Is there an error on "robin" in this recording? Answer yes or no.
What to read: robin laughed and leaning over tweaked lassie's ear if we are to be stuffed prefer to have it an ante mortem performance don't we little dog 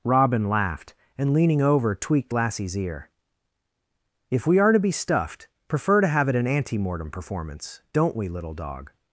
no